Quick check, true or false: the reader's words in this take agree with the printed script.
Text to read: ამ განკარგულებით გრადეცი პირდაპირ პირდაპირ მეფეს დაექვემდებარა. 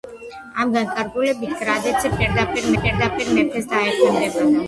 true